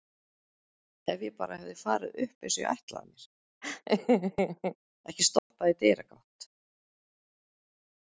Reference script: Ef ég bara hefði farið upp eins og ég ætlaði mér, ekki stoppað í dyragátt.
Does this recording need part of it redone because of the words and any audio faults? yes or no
yes